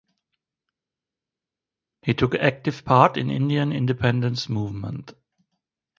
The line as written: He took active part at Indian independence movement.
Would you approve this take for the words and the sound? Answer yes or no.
no